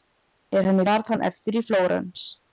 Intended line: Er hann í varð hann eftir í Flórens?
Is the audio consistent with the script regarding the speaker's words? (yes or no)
yes